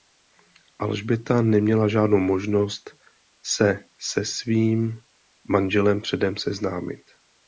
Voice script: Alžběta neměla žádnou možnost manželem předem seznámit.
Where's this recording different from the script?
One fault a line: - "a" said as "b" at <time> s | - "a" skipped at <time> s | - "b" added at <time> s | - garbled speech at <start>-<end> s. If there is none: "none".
- "se se svým" added at 3.4 s